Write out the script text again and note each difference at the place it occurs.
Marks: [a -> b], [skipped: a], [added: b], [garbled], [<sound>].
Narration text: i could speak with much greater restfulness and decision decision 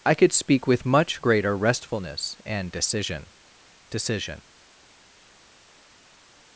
i could speak with much greater restfulness and decision decision